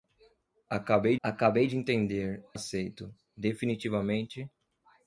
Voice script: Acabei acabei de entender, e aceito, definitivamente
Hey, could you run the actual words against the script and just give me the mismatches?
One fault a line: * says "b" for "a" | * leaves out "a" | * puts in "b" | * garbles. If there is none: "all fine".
all fine